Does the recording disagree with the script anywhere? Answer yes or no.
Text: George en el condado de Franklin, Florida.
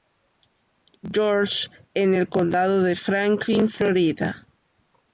no